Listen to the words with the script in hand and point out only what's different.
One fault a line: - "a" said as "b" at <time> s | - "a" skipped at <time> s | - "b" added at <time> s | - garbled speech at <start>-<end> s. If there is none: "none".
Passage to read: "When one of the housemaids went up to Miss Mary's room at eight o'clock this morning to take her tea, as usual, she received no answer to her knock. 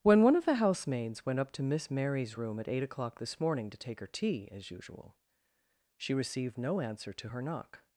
none